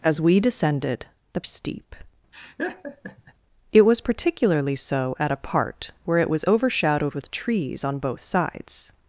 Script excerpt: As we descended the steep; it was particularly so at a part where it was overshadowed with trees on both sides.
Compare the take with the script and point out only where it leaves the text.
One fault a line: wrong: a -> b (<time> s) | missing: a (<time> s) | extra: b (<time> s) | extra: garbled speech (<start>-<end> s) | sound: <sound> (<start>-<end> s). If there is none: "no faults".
sound: laugh (2.3-3.3 s)